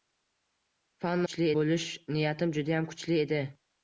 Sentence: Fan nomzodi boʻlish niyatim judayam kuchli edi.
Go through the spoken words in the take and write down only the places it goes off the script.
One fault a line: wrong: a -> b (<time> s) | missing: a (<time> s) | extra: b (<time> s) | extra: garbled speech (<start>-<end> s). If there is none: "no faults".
wrong: nomzodi -> kuchli (1.2 s)